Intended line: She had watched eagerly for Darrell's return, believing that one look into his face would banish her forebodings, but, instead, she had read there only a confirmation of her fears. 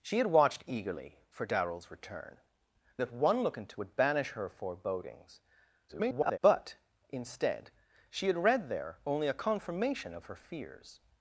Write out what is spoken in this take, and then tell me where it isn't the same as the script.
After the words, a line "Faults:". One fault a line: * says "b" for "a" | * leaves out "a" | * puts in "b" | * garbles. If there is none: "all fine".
She had watched eagerly for Darrell's return, that one look into would banish her forebodings, [garbled] but, instead, she had read there only a confirmation of her fears.
Faults:
* leaves out "believing"
* leaves out "his face"
* garbles